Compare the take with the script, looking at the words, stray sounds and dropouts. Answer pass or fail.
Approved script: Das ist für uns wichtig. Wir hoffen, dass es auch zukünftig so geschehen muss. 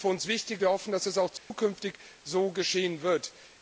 fail